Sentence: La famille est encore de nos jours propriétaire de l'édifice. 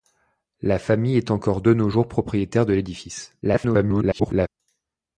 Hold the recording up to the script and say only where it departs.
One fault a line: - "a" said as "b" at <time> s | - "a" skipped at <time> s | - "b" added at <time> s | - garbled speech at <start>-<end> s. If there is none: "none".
- garbled speech at 3.4-4.5 s